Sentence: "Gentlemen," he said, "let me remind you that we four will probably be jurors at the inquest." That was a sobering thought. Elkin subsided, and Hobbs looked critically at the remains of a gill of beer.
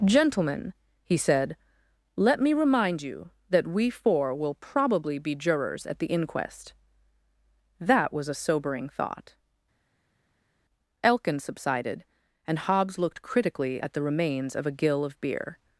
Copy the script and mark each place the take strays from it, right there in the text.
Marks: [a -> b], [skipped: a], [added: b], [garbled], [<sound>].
"Gentlemen," he said, "let me remind you that we four will probably be jurors at the inquest." That was a sobering thought. Elkin subsided, and Hobbs looked critically at the remains of a gill of beer.